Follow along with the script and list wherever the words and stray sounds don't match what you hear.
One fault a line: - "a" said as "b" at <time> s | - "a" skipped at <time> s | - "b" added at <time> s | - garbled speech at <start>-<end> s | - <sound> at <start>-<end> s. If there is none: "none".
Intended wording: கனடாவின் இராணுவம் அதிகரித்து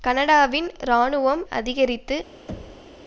- thud at 2.5-3.0 s